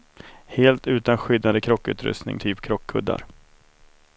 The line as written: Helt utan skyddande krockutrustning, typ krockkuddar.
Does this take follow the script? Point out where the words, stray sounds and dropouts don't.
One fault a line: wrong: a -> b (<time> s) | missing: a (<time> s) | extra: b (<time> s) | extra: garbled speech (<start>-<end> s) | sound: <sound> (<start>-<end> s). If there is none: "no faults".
no faults